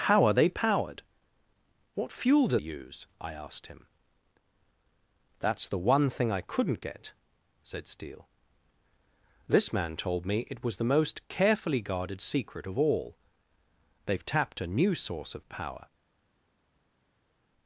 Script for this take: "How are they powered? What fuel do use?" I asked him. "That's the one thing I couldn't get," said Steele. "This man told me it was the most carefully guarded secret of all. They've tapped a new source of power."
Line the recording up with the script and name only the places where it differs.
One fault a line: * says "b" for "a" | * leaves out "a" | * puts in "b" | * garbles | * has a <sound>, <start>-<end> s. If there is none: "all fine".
all fine